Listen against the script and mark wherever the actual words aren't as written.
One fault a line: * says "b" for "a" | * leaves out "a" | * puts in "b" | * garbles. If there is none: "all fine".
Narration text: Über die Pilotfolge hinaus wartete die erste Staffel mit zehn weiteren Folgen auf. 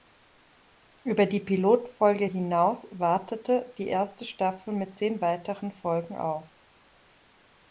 all fine